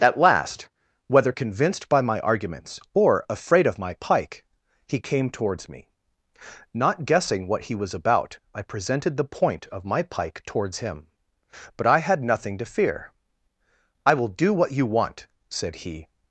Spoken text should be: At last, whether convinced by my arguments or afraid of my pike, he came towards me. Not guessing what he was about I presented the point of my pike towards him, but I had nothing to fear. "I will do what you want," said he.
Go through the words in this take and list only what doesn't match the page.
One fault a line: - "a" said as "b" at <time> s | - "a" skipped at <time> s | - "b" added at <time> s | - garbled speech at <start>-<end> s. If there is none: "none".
none